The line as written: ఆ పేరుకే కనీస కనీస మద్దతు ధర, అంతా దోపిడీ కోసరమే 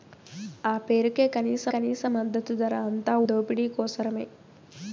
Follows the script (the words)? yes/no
yes